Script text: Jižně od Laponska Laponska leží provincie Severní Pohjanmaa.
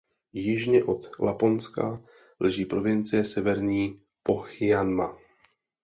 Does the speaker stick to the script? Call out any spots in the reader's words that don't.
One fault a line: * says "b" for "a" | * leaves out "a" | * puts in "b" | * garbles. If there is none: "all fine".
* leaves out "Laponska"